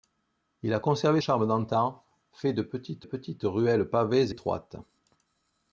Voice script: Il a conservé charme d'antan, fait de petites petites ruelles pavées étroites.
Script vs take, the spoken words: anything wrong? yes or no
no